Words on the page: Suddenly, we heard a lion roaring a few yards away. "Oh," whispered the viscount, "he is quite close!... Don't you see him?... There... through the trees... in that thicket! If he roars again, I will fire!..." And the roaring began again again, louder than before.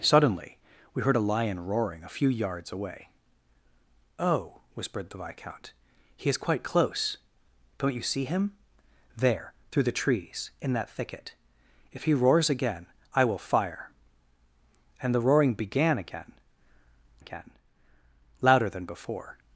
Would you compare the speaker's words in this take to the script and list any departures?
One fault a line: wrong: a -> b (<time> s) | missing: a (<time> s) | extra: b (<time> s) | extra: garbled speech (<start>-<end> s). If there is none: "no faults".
no faults